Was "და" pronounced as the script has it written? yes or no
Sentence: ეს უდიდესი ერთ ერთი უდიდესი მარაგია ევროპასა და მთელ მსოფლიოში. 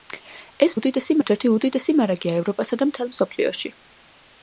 yes